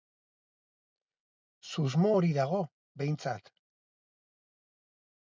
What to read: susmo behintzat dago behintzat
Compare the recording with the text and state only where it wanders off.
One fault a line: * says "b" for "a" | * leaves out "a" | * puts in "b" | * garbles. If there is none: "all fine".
* says "hori" for "behintzat"